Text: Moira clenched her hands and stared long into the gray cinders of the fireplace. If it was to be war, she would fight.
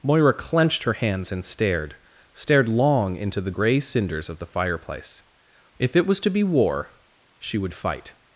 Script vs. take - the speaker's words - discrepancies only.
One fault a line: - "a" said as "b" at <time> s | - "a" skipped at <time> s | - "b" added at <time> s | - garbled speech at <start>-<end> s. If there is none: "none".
- "stared" added at 2.3 s